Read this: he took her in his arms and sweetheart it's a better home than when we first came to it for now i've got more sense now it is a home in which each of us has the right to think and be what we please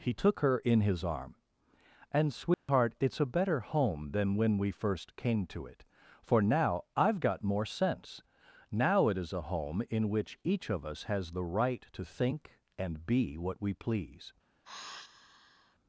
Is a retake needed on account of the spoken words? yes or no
yes